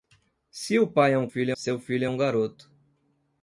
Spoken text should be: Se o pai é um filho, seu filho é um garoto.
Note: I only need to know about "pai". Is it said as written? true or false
true